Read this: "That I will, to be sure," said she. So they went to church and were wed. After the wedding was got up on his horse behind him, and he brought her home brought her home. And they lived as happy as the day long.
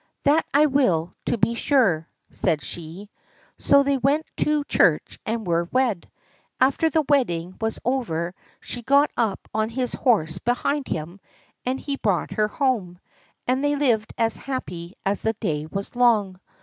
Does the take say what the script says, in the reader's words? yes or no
no